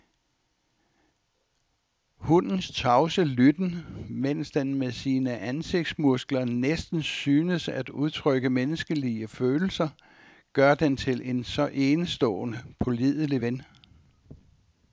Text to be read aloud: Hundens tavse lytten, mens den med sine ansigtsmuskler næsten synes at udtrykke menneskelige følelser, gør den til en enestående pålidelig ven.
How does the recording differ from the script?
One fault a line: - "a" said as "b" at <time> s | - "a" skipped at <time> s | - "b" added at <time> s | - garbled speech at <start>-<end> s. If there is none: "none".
- "så" added at 11.4 s